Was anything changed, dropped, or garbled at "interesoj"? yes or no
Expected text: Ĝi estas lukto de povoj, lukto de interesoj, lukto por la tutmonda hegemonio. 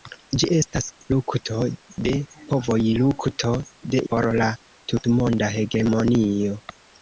yes